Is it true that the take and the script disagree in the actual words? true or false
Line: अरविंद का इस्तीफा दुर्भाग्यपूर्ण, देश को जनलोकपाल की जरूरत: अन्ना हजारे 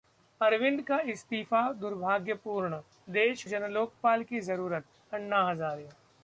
true